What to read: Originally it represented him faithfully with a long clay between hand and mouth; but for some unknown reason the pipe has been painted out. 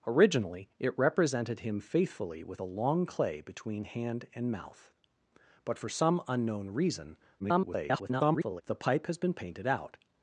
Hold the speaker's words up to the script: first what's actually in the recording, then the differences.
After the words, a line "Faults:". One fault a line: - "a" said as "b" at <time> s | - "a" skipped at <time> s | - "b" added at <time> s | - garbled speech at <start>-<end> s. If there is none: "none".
Originally it represented him faithfully with a long clay between hand and mouth; but for some unknown reason [garbled] the pipe has been painted out.
Faults:
- garbled speech at 7.4-8.6 s